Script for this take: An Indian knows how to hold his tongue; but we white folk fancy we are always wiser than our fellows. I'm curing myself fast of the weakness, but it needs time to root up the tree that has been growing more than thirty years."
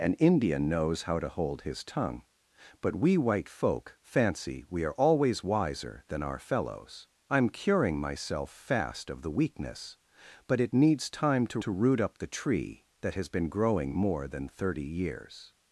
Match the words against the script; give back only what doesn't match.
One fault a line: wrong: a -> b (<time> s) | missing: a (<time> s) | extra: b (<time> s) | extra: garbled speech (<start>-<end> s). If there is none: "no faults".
extra: to (11.6 s)